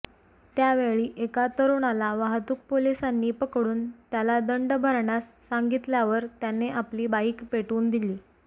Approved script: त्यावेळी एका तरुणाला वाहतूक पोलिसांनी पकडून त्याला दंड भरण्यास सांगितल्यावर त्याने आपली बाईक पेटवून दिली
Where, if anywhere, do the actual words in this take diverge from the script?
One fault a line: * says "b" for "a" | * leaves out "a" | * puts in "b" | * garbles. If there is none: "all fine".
all fine